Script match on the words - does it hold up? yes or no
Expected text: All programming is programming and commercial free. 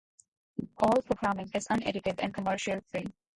no